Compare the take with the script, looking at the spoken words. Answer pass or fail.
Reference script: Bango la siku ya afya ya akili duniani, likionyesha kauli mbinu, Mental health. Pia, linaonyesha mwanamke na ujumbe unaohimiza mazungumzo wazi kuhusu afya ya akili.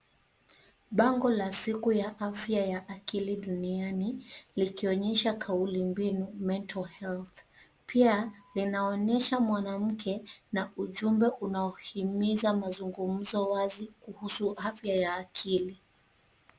pass